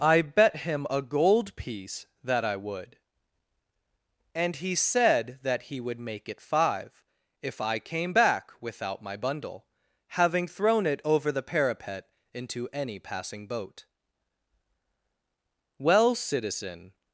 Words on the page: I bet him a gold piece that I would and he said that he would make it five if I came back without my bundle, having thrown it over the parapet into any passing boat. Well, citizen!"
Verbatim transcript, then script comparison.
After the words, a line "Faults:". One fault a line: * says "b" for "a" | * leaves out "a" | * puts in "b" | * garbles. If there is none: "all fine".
I bet him a gold piece that I would and he said that he would make it five if I came back without my bundle, having thrown it over the parapet into any passing boat. Well, citizen!"
Faults:
all fine